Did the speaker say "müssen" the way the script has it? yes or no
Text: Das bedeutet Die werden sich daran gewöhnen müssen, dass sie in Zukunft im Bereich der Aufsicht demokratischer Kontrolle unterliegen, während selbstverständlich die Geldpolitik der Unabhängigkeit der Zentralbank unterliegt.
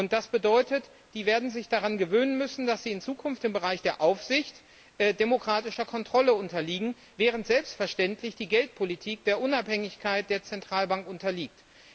yes